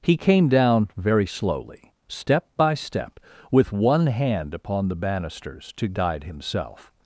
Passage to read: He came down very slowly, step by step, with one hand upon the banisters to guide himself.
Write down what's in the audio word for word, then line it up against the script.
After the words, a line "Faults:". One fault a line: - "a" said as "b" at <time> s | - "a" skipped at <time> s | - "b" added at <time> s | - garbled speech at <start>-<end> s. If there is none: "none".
He came down very slowly, step by step, with one hand upon the banisters to guide himself.
Faults:
none